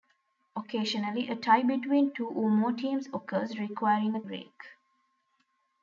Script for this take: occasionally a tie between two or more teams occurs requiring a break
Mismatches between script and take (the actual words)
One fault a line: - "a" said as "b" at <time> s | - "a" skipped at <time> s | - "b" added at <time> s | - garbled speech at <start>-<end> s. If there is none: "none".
none